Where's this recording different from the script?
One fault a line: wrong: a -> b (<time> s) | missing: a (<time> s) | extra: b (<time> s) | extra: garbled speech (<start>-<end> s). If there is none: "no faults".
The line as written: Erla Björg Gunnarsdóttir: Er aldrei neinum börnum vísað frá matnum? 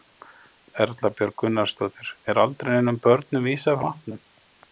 missing: frá (3.8 s)